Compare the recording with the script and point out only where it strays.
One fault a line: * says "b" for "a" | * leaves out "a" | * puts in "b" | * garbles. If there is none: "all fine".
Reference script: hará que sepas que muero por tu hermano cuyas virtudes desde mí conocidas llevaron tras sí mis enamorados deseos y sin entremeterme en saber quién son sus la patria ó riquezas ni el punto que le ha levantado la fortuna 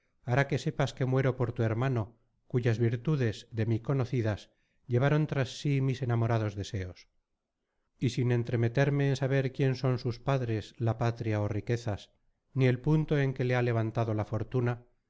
* says "de" for "desde"
* puts in "padres"
* puts in "en"